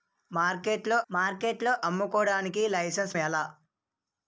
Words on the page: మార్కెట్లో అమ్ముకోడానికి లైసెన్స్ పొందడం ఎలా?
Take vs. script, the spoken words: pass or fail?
fail